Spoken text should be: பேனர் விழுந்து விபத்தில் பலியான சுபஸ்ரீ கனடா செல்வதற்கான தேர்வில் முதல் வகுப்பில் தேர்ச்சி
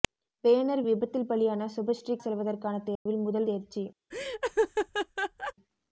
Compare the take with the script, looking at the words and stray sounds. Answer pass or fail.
fail